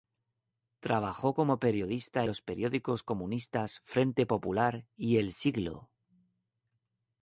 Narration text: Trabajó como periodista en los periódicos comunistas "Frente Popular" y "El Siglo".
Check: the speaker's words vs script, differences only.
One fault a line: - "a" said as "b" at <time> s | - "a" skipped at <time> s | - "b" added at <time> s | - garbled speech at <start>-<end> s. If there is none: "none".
- "en" skipped at 2.2 s